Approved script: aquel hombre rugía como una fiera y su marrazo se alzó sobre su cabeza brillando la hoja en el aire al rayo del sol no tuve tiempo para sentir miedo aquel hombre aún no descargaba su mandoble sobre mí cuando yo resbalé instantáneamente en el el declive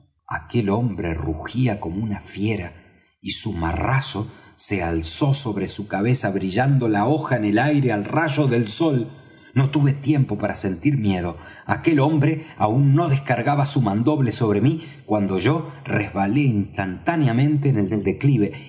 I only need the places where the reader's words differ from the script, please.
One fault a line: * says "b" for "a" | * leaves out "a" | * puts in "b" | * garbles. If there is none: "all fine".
all fine